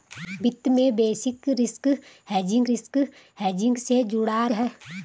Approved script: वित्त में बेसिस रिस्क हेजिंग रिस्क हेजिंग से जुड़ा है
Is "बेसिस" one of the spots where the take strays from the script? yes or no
no